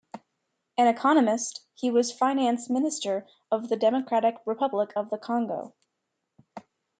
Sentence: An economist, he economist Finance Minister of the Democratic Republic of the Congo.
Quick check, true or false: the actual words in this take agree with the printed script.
false